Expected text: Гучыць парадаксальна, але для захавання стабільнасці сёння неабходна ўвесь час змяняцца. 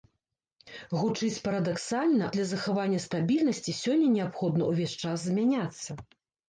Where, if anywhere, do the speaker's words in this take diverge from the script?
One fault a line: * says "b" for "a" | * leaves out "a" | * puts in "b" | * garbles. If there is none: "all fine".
* leaves out "але"